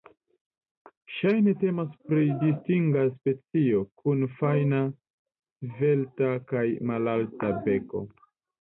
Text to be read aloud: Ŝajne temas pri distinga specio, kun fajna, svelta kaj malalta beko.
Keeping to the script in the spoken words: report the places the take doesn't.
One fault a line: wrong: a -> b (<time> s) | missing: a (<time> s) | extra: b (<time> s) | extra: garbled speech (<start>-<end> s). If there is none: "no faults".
no faults